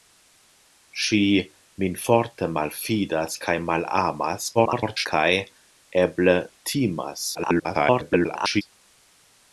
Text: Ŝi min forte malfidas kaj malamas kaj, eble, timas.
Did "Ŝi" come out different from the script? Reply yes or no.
no